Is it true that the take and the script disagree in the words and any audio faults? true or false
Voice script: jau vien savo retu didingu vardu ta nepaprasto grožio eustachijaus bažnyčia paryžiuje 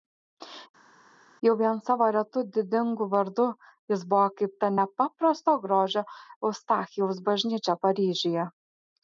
true